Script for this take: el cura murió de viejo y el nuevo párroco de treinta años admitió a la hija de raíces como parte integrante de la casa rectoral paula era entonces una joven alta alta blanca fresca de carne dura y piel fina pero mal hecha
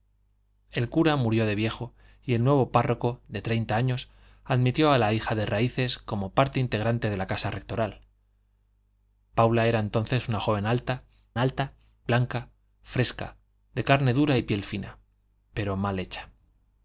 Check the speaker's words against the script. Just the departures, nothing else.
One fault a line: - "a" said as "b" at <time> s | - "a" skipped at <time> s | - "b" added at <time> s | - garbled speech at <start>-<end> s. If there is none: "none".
none